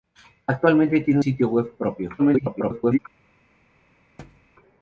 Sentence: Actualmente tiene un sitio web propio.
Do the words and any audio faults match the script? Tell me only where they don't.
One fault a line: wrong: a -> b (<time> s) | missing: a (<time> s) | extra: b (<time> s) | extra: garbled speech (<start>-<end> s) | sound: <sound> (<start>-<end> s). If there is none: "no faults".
missing: un (1.2 s)
extra: garbled speech (2.2-3.0 s)
sound: thud (4.2-4.5 s)